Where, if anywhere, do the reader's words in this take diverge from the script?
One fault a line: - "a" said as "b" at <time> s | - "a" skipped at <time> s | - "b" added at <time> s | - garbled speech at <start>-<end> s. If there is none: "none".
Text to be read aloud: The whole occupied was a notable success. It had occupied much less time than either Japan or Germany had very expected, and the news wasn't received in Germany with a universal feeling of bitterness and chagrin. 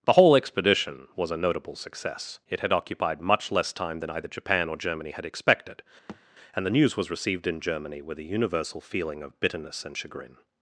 - "occupied" said as "expedition" at 0.4 s
- "very" skipped at 5.2 s
- "wasn't" said as "was" at 7.0 s